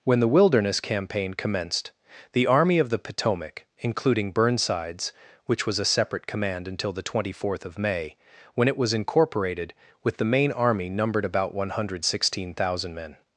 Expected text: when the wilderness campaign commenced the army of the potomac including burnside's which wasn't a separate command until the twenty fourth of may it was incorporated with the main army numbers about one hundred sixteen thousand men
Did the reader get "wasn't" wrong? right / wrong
wrong